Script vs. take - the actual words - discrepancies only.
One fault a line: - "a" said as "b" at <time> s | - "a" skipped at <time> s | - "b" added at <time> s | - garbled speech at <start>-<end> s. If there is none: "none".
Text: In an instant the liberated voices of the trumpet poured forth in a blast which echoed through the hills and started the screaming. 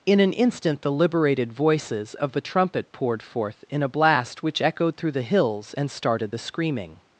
none